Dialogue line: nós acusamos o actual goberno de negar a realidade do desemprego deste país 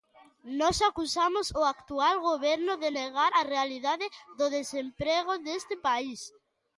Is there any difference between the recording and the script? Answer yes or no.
no